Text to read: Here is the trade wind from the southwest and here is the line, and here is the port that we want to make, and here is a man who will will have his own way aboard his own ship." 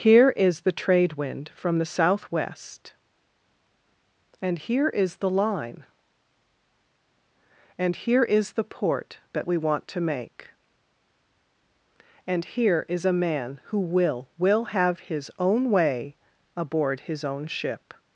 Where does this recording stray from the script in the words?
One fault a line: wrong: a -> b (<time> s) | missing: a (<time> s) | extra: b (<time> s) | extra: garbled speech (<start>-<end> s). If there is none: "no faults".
no faults